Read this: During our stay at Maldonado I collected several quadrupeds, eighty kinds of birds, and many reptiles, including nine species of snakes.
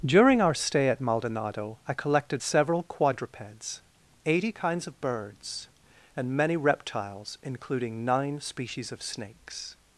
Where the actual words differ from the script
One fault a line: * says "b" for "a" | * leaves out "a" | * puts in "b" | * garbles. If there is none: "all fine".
all fine